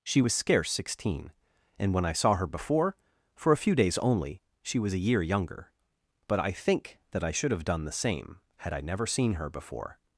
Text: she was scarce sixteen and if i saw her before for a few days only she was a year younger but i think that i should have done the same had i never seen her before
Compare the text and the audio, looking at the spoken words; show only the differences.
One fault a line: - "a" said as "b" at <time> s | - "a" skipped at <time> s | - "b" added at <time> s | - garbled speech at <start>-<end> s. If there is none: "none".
- "if" said as "when" at 1.9 s